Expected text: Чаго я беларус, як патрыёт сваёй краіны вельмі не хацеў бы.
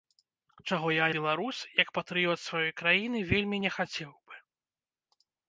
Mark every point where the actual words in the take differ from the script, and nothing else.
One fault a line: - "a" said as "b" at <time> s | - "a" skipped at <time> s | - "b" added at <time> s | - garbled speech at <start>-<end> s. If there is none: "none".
none